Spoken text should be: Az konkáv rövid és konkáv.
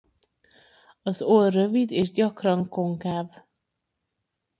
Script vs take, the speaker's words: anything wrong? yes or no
yes